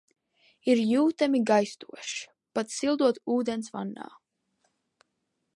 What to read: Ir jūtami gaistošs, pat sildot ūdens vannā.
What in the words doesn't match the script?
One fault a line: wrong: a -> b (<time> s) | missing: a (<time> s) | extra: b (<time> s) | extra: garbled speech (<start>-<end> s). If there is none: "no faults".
no faults